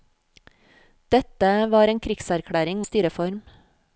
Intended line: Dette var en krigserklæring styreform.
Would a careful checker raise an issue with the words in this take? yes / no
no